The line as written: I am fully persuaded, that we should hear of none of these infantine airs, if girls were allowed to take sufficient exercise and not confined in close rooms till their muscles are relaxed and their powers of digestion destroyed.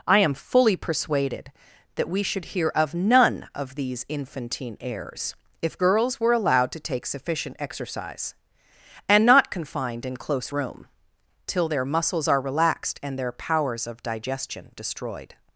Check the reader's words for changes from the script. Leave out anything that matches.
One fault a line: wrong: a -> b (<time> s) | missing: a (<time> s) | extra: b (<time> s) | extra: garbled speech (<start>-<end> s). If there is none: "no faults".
wrong: rooms -> room (10.5 s)